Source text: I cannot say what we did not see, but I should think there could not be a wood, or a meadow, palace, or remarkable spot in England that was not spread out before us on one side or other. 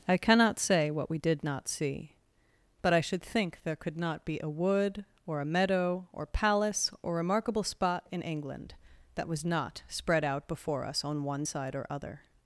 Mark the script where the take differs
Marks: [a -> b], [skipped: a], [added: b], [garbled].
I cannot say what we did not see, but I should think there could not be a wood, or a meadow, [added: or] palace, or remarkable spot in England that was not spread out before us on one side or other.